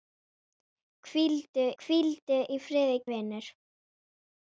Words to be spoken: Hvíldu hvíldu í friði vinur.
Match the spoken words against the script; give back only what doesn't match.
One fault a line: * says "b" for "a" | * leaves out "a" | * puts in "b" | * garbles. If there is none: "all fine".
all fine